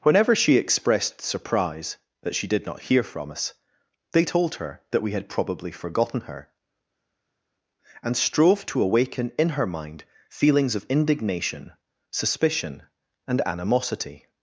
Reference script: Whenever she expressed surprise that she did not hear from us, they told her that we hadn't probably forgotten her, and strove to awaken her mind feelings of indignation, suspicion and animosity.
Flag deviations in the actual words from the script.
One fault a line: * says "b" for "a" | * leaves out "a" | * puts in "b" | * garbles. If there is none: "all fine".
* says "had" for "hadn't"
* puts in "in"